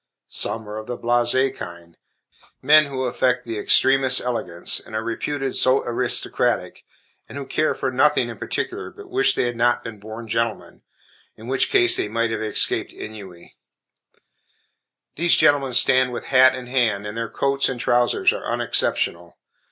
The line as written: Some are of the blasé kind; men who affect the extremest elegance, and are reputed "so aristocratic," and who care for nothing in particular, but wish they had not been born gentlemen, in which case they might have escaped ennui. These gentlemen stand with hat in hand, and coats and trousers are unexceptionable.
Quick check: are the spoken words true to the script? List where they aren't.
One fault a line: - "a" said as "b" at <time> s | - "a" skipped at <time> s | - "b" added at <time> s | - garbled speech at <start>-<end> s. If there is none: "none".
- "their" added at 17.1 s